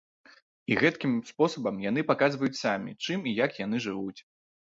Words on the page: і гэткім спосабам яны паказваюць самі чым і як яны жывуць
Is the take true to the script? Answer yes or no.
yes